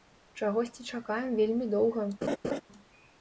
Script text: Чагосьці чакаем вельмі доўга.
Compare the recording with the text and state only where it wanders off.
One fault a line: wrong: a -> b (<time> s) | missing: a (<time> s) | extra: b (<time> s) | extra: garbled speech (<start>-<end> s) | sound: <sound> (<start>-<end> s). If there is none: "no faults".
sound: laugh (2.2-2.6 s)